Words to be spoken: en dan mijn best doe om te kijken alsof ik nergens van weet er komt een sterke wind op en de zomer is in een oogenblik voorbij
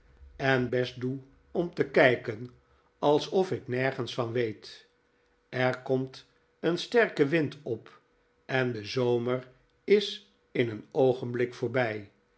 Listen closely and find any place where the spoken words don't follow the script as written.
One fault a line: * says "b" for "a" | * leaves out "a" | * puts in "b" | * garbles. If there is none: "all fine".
* leaves out "dan mijn"